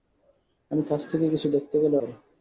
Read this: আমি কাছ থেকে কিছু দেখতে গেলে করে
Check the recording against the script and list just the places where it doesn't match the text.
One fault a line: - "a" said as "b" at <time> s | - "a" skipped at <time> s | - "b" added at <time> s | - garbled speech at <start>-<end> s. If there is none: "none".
none